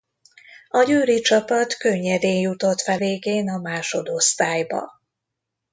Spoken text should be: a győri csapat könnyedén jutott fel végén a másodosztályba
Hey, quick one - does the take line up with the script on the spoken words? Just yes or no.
yes